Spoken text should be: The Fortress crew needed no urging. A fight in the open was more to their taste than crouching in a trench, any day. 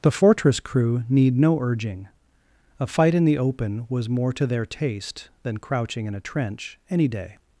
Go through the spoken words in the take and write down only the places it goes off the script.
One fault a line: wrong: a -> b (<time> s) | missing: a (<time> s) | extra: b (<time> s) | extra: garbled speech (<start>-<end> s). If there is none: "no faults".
wrong: needed -> need (1.1 s)